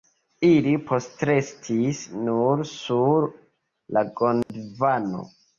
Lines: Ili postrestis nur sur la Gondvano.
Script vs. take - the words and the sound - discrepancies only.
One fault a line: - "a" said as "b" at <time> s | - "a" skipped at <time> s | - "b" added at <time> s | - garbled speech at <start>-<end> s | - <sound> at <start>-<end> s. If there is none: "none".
- dropout at 4.4-4.5 s